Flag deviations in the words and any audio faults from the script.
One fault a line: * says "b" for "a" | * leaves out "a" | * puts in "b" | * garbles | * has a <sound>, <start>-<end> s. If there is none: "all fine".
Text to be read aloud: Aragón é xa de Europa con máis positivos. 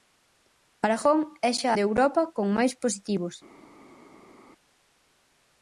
all fine